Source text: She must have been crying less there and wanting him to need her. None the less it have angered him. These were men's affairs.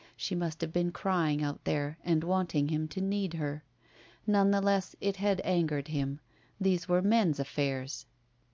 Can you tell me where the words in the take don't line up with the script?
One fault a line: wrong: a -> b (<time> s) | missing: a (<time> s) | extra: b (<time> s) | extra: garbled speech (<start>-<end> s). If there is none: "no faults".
wrong: less -> out (1.4 s)
wrong: have -> had (5.2 s)